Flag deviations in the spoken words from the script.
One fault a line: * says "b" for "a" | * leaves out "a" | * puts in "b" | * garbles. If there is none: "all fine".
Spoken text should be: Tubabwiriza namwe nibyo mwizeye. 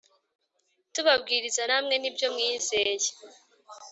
all fine